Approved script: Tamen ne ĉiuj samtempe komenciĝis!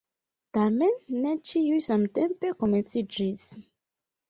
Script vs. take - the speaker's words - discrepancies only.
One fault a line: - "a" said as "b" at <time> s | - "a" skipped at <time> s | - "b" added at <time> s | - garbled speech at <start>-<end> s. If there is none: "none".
none